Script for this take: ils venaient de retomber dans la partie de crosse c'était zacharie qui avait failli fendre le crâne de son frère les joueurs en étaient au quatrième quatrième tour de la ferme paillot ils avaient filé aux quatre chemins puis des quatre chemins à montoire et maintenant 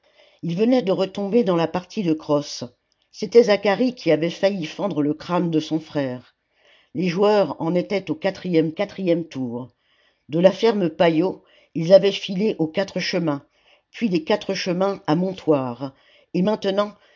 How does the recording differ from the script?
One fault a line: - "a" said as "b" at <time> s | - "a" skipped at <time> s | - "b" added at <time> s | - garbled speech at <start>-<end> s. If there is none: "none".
none